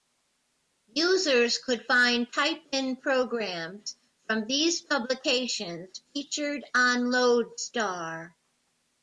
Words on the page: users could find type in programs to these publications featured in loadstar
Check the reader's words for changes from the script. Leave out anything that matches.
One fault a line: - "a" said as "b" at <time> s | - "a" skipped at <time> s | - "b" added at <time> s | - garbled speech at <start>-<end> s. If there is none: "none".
- "to" said as "from" at 4.2 s
- "in" said as "on" at 6.8 s